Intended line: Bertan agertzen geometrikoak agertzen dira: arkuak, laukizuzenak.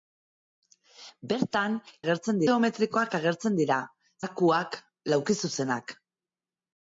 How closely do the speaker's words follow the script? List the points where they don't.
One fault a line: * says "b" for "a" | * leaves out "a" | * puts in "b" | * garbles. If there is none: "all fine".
all fine